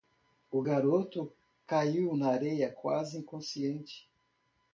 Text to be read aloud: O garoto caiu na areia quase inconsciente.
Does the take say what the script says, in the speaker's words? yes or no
yes